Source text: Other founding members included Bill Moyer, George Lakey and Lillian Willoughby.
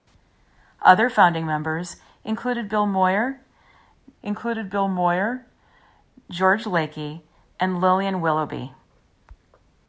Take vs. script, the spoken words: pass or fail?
fail